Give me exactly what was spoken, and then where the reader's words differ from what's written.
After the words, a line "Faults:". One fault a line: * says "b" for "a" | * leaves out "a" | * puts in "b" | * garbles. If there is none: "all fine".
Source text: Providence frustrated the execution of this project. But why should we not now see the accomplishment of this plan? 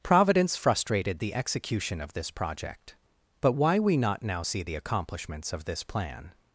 Providence frustrated the execution of this project. But why we not now see the accomplishments of this plan?
Faults:
* leaves out "should"
* says "accomplishments" for "accomplishment"